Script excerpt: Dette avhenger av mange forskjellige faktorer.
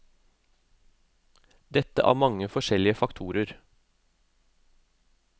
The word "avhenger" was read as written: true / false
false